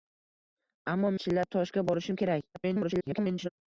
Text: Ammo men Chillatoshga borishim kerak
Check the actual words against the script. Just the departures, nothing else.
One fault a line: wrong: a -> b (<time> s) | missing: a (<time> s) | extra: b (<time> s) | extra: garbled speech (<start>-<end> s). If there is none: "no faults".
missing: men (1.1 s)
extra: garbled speech (2.5-3.5 s)